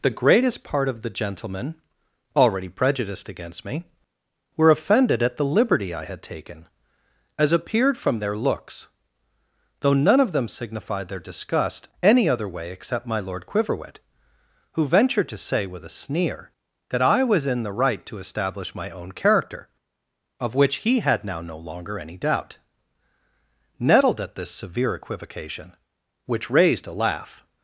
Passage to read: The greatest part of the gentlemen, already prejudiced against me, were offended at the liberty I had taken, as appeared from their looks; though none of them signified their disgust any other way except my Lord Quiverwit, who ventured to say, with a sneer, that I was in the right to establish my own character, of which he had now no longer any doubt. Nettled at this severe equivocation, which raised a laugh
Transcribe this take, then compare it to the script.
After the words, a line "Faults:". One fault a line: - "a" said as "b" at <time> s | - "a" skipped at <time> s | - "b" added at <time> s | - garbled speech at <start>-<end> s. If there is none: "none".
The greatest part of the gentlemen, already prejudiced against me, were offended at the liberty I had taken, as appeared from their looks; though none of them signified their disgust any other way except my Lord Quiverwit, who ventured to say, with a sneer, that I was in the right to establish my own character, of which he had now no longer any doubt. Nettled at this severe equivocation, which raised a laugh
Faults:
none